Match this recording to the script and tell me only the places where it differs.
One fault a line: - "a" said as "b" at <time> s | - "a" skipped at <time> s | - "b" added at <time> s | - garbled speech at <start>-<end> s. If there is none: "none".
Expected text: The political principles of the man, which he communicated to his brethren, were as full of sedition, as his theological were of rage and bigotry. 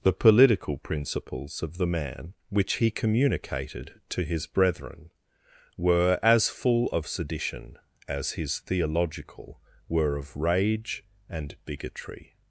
none